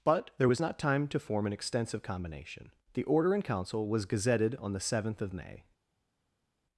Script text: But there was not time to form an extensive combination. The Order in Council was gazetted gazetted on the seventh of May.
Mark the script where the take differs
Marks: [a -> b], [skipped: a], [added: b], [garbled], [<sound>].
But there was not time to form an extensive combination. The Order in Council was gazetted [skipped: gazetted] on the seventh of May.